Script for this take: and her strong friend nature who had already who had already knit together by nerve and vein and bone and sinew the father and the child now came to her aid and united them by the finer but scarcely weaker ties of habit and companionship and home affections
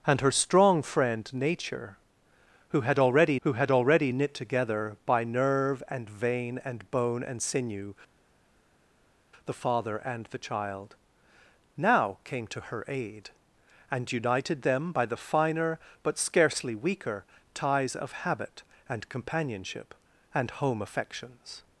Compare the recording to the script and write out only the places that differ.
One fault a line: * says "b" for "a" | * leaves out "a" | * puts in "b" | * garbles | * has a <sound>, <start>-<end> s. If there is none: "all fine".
all fine